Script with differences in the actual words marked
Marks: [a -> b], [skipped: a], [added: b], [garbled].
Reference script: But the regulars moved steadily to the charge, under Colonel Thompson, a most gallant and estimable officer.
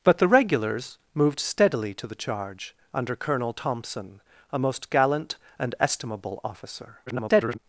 But the regulars moved steadily to the charge, under Colonel Thompson, a most gallant and estimable officer. [garbled]